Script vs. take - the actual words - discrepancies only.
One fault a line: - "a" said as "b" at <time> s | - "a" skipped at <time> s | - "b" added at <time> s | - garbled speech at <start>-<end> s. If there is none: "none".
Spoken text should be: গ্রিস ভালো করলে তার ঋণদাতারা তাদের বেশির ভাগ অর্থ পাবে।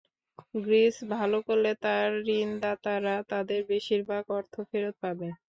- "ফেরত" added at 4.7 s